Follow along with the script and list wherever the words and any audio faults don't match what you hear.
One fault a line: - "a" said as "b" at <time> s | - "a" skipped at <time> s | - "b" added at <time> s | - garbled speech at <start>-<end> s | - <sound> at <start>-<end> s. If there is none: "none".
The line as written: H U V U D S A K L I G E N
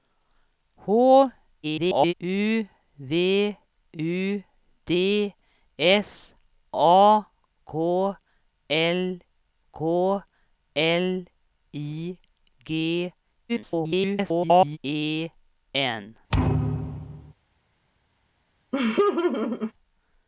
- garbled speech at 1.6-2.1 s
- "K L" added at 9.7 s
- garbled speech at 13.5-14.8 s
- thud at 16.3-17.3 s
- laugh at 18.7-19.7 s